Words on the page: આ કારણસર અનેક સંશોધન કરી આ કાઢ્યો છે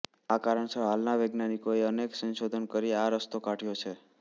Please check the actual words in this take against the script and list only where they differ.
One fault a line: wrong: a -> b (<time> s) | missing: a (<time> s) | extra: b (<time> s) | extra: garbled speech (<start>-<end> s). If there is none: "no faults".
extra: હાલના વૈજ્ઞાનિકોએ (0.8 s)
extra: રસ્તો (3.1 s)